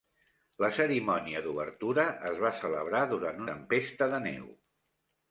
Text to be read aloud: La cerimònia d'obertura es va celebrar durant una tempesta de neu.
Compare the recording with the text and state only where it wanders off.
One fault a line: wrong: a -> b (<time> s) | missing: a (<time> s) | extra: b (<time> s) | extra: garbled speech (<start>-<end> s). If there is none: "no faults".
missing: una (3.5 s)